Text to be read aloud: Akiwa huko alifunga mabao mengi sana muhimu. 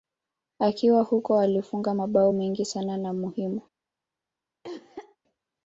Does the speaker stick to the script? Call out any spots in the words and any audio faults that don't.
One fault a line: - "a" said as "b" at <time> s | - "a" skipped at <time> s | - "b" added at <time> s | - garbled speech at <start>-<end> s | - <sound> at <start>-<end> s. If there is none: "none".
- "na" added at 3.0 s
- cough at 4.6-5.2 s